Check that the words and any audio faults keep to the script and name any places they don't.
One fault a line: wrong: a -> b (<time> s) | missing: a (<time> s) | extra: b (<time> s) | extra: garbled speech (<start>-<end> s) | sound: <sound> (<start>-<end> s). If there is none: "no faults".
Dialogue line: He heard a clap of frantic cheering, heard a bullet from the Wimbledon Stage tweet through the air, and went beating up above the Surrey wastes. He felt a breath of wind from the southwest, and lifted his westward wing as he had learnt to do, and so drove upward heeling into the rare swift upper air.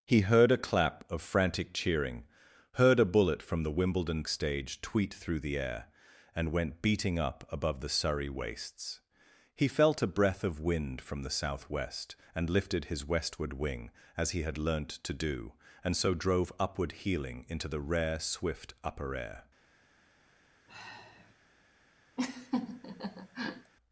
sound: sigh (20.7-21.3 s)
sound: laugh (22.2-23.7 s)